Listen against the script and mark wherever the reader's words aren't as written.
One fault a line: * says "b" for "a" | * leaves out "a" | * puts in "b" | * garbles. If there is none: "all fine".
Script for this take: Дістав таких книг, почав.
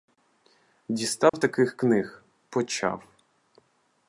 all fine